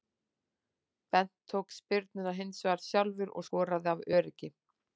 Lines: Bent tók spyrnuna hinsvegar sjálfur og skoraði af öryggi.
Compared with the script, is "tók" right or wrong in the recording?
right